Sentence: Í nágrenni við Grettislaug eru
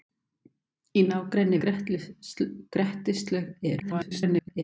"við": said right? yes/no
no